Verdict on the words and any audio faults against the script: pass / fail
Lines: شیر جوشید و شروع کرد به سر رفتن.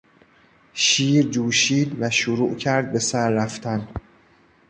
pass